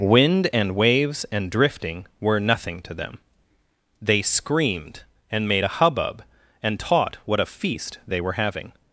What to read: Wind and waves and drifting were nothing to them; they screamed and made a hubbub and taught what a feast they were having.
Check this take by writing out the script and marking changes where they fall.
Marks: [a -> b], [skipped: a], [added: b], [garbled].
Wind and waves and drifting were nothing to them; they screamed and made a hubbub and taught what a feast they were having.